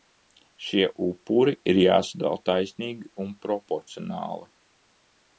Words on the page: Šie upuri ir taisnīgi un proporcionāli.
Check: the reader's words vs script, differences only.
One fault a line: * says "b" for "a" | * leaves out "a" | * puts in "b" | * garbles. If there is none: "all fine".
* puts in "jāsadala"